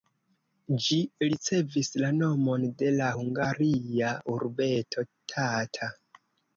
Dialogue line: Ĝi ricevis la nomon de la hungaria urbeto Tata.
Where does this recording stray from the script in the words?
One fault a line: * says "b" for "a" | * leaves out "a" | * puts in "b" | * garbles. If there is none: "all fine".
all fine